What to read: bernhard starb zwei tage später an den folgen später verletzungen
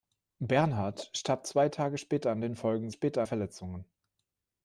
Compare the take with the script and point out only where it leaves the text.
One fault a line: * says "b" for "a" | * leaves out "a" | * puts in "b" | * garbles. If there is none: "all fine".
all fine